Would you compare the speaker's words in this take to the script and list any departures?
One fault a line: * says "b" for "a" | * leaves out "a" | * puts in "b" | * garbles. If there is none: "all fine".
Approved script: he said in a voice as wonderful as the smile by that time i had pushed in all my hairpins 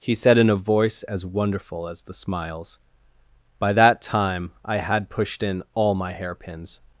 * says "smiles" for "smile"